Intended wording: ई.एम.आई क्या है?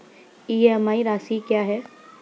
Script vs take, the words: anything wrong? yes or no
yes